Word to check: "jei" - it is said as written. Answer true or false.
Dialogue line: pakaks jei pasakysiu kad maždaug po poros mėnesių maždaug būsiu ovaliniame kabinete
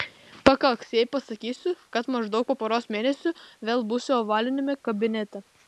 true